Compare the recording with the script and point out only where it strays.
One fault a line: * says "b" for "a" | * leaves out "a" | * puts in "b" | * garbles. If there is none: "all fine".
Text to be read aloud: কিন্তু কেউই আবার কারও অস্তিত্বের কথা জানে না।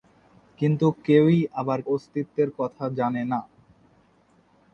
* leaves out "কারও"